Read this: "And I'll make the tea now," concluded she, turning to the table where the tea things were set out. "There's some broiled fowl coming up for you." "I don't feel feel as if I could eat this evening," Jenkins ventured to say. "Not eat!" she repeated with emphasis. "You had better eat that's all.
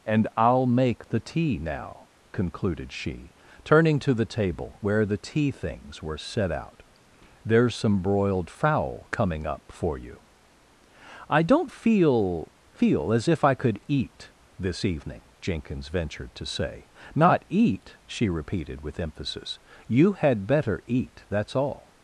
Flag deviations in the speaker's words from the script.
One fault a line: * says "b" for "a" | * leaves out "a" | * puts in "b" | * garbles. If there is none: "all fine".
all fine